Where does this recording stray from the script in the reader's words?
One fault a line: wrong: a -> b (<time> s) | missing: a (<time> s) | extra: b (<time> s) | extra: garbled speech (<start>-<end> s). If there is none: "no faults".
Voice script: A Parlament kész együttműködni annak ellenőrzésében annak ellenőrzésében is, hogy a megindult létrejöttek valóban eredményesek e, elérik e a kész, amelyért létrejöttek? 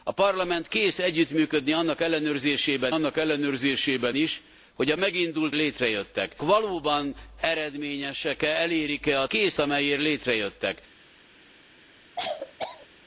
no faults